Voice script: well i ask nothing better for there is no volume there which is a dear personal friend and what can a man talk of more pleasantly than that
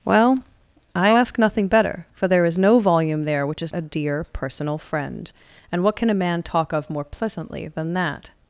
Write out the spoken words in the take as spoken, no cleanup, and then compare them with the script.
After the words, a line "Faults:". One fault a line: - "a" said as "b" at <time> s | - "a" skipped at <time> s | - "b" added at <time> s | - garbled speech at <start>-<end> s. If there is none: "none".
well i ask nothing better for there is no volume there which is a dear personal friend and what can a man talk of more pleasantly than that
Faults:
none